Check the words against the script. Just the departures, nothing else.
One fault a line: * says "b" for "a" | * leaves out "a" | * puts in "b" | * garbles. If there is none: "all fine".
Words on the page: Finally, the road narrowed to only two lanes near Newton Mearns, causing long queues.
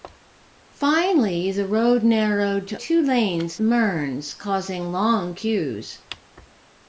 * leaves out "only"
* leaves out "near Newton"